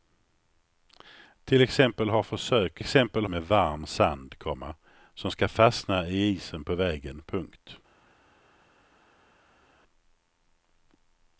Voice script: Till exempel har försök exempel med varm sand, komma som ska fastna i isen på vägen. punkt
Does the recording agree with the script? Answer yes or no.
yes